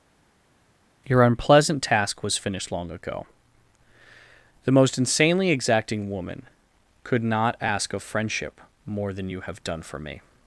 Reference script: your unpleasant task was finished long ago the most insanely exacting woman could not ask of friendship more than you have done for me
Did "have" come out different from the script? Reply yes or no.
no